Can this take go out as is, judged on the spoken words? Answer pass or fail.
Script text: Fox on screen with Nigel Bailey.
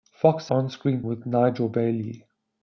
pass